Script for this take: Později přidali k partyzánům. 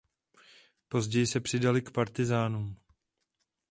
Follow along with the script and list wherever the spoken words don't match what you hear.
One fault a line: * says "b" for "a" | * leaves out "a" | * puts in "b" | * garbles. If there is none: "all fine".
* puts in "se"